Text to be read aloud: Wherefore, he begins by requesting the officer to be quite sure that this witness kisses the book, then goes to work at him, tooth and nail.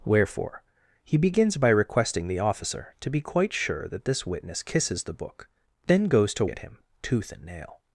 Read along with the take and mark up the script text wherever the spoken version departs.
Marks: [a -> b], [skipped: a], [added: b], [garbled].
Wherefore, he begins by requesting the officer to be quite sure that this witness kisses the book, then goes to [skipped: work] at him, tooth and nail.